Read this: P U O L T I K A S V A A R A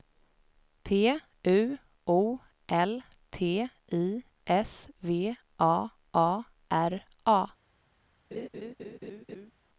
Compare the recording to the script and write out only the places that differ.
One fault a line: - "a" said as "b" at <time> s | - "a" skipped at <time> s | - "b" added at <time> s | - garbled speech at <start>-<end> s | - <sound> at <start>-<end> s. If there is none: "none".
- "K A" skipped at 4.2 s
- laugh at 8.3-9.5 s